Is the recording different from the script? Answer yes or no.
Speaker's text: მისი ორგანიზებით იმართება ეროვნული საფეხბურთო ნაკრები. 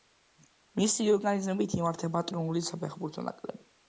no